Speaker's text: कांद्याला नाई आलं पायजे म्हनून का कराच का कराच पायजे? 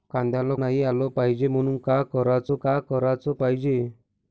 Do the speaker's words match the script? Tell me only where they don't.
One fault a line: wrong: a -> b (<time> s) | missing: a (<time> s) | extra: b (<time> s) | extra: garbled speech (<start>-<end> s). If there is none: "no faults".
no faults